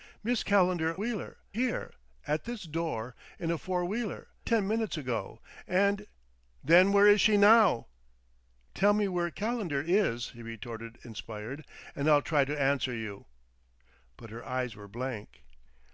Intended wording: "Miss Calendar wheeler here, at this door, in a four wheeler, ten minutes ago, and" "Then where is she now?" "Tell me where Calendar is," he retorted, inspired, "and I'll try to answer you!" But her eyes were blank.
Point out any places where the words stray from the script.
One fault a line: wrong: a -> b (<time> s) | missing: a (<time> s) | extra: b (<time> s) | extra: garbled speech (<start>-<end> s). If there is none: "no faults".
no faults